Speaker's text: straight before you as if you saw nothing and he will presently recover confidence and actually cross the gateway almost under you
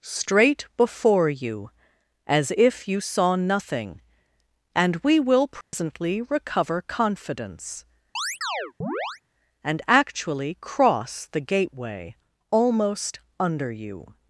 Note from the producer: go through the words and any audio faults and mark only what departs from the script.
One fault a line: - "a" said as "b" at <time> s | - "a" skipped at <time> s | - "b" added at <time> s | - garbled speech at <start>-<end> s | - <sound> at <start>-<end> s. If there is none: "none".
- "he" said as "we" at 5.0 s
- dropout at 5.6-5.7 s
- chirp at 8.2-9.2 s